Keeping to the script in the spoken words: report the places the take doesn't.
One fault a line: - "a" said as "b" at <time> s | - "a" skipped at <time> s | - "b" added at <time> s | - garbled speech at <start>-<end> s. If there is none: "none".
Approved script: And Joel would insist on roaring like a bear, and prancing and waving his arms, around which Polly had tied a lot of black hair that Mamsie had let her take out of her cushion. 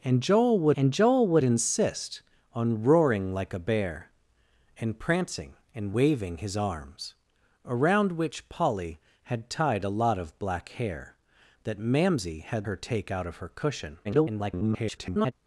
- "and Joel would" added at 0.7 s
- "let" skipped at 12.7 s
- garbled speech at 14.0-15.3 s